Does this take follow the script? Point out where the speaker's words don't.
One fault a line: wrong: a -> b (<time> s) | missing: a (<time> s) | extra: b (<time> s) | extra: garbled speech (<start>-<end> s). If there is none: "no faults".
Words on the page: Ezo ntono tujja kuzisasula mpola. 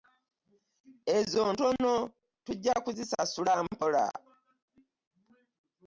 no faults